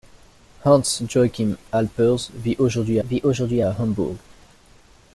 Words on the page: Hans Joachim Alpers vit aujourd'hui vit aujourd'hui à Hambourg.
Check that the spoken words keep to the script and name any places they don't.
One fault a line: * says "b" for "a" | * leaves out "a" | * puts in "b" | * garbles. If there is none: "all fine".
all fine